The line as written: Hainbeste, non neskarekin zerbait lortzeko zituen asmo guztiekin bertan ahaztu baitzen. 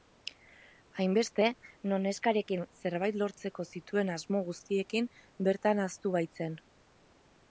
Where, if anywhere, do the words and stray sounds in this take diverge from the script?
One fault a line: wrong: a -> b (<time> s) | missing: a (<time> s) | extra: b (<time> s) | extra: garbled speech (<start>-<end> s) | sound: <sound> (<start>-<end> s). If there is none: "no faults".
no faults